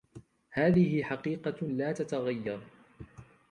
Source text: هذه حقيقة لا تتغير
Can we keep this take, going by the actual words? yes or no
yes